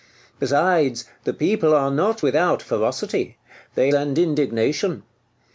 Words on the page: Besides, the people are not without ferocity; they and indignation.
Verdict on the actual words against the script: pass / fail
pass